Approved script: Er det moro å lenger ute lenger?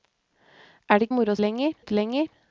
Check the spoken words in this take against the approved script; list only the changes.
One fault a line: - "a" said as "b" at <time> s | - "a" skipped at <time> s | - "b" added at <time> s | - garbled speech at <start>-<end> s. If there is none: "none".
none